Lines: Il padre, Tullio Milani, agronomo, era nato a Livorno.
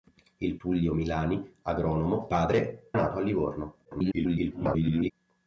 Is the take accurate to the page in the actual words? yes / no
no